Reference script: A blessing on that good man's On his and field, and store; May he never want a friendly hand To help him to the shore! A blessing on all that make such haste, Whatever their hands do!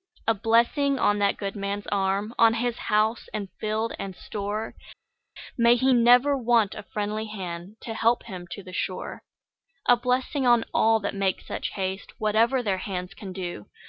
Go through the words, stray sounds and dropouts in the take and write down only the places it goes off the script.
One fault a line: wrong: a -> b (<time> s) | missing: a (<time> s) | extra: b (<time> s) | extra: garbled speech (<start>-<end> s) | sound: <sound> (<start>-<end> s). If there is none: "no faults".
extra: arm (1.9 s)
extra: house (2.8 s)
extra: can (13.1 s)